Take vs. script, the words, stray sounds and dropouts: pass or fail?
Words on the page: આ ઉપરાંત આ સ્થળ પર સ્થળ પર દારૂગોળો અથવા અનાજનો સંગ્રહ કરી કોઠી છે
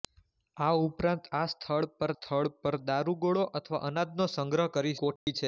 fail